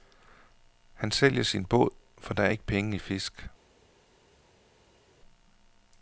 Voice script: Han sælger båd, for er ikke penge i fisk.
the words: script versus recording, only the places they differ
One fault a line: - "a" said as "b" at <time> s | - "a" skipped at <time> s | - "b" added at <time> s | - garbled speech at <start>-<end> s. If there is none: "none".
- "sin" added at 1.4 s
- "der" added at 2.3 s